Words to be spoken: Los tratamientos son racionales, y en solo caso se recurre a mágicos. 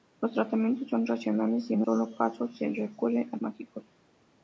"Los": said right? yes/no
yes